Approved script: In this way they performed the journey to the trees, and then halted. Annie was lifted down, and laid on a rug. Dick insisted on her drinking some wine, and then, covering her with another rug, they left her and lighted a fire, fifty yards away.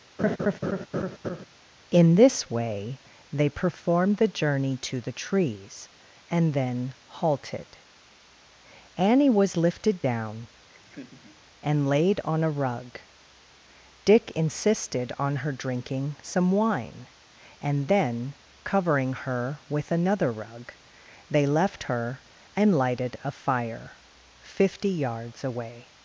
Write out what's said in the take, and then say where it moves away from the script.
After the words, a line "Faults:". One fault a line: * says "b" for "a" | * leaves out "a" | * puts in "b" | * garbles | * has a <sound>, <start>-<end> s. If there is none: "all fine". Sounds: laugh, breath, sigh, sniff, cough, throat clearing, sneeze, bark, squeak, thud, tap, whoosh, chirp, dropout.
In this way they performed the journey to the trees, and then halted. Annie was lifted down, and laid on a rug. Dick insisted on her drinking some wine, and then, covering her with another rug, they left her and lighted a fire, fifty yards away.
Faults:
* has a laugh, 0.2-1.5 s
* has a laugh, 10.7-11.4 s